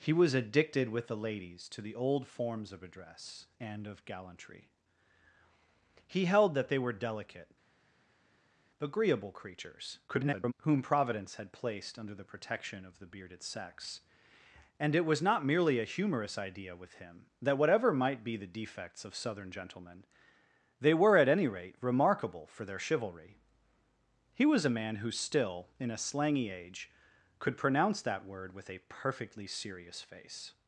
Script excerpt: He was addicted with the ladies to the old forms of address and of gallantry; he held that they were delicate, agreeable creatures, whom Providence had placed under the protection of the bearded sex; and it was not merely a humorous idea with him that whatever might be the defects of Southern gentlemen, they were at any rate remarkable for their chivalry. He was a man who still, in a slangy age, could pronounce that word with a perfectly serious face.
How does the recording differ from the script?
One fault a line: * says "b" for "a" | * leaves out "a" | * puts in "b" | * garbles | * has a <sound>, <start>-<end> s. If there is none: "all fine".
* garbles